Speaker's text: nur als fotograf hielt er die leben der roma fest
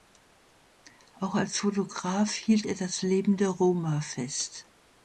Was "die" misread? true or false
true